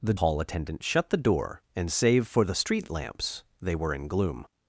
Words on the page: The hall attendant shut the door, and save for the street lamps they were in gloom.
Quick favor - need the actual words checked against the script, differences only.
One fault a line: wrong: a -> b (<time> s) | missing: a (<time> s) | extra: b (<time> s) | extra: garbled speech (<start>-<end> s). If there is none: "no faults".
no faults